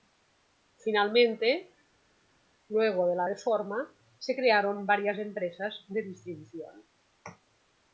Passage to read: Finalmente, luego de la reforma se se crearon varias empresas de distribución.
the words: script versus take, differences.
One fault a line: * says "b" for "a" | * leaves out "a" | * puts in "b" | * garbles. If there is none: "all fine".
* leaves out "se"